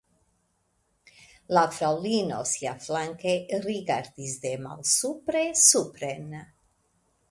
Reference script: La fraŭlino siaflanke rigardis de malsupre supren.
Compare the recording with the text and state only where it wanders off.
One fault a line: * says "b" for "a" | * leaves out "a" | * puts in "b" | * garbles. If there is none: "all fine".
all fine